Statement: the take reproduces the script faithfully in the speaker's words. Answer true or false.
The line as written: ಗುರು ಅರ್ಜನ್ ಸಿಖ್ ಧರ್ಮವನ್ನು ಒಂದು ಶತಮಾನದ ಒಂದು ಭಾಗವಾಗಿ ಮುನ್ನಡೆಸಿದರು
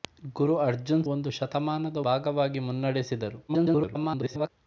false